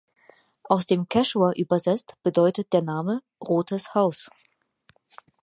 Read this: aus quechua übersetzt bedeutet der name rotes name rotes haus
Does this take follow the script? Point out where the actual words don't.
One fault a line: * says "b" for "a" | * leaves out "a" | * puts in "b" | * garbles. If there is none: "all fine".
* puts in "dem"
* leaves out "name rotes"